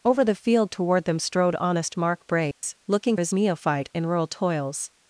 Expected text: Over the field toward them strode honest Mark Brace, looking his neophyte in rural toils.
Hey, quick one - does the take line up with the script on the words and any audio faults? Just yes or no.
no